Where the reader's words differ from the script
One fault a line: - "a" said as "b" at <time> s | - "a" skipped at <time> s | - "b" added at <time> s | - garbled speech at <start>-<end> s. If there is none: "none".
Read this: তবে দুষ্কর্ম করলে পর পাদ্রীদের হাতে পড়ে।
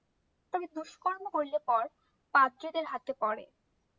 none